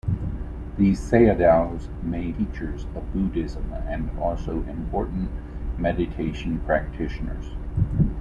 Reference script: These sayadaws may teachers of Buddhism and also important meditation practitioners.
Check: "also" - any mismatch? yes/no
no